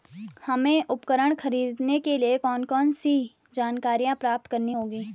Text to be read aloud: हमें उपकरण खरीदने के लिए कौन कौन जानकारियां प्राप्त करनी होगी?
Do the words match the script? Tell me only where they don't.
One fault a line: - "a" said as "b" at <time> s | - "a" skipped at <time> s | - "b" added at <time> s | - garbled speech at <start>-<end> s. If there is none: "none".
- "सी" added at 2.9 s